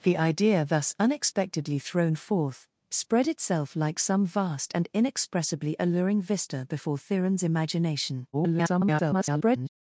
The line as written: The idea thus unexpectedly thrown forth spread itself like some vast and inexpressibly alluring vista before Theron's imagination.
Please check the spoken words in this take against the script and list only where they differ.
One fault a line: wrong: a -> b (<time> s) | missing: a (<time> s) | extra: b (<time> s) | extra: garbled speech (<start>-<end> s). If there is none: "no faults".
extra: garbled speech (8.3-9.7 s)